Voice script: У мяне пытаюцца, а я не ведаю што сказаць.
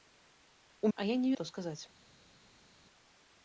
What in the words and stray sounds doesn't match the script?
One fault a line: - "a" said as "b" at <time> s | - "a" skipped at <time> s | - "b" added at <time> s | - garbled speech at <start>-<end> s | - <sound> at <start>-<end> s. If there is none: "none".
- "мяне пытаюцца" skipped at 0.9 s
- "ведаю" skipped at 1.3 s